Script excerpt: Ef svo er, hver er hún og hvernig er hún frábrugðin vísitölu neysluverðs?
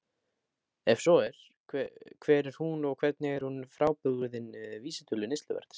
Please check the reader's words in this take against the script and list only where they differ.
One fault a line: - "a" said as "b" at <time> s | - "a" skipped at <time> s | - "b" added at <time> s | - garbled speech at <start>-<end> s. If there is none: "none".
none